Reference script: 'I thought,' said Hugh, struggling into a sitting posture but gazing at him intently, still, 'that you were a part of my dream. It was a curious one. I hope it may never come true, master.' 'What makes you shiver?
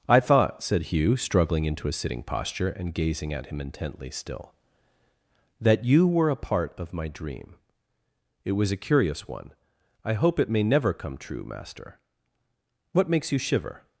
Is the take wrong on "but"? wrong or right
wrong